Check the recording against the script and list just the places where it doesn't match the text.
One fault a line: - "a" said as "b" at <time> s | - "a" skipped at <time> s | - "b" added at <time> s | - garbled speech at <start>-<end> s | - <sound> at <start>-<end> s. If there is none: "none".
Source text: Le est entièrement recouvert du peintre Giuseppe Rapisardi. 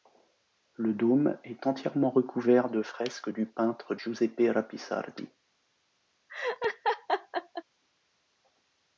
- "dôme" added at 0.9 s
- "de fresques" added at 2.7 s
- laugh at 6.3-7.6 s